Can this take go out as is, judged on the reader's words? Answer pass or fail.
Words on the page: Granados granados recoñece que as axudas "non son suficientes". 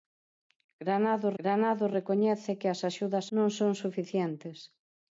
pass